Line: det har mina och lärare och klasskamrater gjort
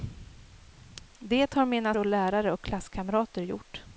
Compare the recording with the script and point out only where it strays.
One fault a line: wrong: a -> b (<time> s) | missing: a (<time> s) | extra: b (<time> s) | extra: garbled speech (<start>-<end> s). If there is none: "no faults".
no faults